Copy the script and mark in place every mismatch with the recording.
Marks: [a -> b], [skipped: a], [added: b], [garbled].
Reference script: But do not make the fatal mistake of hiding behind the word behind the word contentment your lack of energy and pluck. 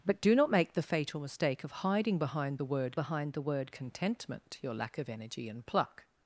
But do not make the fatal mistake of hiding behind the word behind the word contentment your lack of energy and pluck.